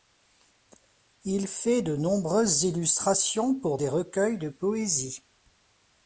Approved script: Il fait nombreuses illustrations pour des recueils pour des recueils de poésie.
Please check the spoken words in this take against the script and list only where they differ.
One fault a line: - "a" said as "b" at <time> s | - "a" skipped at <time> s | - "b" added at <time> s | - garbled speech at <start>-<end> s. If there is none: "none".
- "de" added at 1.8 s
- "pour des recueils" skipped at 4.4 s